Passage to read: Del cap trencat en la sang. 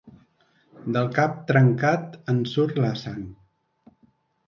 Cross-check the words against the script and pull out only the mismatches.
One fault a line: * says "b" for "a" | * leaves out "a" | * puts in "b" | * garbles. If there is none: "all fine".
* puts in "surt"